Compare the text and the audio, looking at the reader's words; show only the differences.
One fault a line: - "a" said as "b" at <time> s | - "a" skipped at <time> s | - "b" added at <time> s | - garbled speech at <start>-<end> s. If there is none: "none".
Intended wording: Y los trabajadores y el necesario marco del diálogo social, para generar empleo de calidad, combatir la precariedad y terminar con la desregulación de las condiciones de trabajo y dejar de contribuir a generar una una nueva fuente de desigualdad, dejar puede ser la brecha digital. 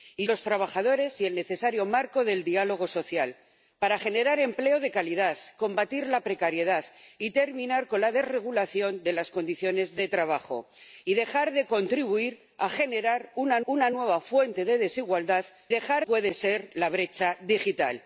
none